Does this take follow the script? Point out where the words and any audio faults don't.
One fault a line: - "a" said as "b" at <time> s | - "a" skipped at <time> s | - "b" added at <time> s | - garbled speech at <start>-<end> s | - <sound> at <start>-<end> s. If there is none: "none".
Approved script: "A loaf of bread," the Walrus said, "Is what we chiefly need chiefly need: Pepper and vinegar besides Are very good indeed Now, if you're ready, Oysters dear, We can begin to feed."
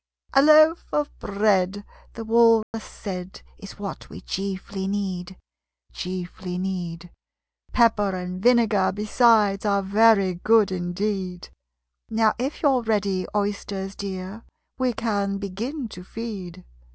- dropout at 2.6-2.7 s